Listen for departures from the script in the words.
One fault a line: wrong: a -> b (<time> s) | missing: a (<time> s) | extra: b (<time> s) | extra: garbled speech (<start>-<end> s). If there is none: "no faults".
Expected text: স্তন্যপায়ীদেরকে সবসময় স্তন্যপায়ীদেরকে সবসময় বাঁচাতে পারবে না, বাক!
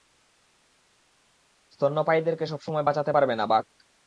missing: স্তন্যপায়ীদেরকে সবসময় (2.9 s)